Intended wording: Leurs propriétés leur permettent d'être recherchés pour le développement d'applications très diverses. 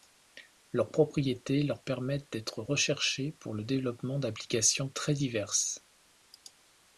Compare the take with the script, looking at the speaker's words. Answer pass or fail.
pass